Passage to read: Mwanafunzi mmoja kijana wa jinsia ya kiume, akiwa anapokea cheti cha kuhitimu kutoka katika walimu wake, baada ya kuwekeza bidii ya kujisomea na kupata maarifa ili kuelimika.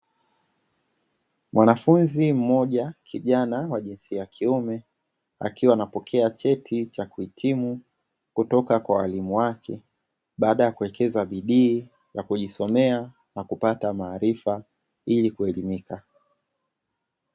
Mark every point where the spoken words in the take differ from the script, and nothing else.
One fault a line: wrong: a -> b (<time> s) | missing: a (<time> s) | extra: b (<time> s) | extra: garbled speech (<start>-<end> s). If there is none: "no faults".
wrong: katika -> kwa (8.8 s)